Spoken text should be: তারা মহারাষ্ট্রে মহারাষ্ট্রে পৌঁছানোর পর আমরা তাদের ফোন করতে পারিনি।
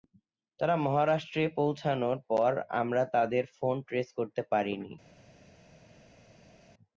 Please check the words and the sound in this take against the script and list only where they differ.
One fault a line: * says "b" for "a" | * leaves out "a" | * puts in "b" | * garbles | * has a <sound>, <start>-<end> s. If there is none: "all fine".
* leaves out "মহারাষ্ট্রে"
* puts in "ট্রেস"